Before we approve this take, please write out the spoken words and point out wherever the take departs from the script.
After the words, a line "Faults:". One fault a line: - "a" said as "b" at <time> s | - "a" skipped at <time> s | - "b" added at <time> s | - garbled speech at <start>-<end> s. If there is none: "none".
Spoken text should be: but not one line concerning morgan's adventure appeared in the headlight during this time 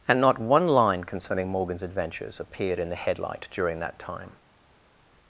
and not one line concerning morgan's adventures appeared in the headlight during that time
Faults:
- "but" said as "and" at 0.1 s
- "adventure" said as "adventures" at 1.8 s
- "this" said as "that" at 3.8 s